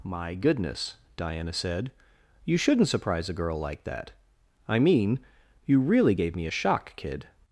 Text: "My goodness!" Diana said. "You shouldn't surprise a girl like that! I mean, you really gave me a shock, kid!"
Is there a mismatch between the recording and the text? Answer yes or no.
no